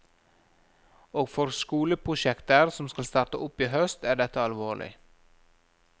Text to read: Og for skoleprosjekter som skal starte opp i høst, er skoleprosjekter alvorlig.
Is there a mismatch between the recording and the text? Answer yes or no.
yes